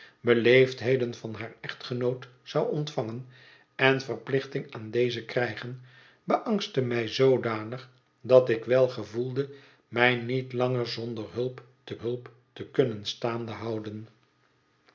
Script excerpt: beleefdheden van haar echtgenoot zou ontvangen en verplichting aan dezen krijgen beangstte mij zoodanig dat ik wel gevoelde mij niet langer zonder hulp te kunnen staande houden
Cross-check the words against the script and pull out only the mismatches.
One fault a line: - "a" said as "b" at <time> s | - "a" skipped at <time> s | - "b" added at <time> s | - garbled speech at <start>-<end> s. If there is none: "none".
- "hulp te" added at 12.0 s